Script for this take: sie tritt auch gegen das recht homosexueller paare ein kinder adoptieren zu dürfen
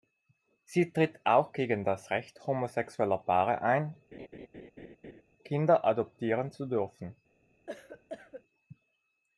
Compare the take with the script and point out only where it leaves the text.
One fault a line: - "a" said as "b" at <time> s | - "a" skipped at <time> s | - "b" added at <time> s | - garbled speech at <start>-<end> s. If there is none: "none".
none